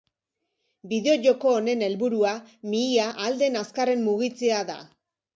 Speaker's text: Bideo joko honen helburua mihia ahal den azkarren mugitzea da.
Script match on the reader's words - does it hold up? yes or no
yes